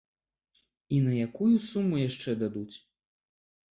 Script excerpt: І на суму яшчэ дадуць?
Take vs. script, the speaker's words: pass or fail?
fail